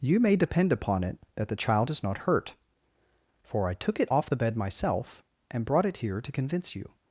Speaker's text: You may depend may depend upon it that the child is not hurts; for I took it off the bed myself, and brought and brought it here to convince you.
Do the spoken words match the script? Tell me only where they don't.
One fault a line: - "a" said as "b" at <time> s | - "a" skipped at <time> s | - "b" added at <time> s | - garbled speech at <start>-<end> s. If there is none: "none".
- "may depend" skipped at 0.7 s
- "hurts" said as "hurt" at 2.2 s
- "and brought" skipped at 5.9 s